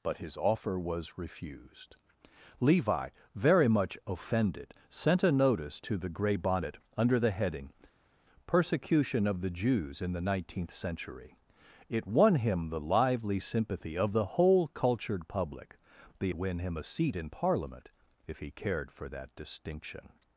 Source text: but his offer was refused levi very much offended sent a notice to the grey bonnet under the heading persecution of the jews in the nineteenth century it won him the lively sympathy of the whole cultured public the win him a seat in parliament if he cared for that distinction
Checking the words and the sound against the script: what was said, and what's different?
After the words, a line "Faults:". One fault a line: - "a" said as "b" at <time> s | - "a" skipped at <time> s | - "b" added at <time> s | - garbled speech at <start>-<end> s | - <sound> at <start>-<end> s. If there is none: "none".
but his offer was refused levi very much offended sent a notice to the grey bonnet under the heading persecution of the jews in the nineteenth century it won him the lively sympathy of the whole cultured public the win him a seat in parliament if he cared for that distinction
Faults:
none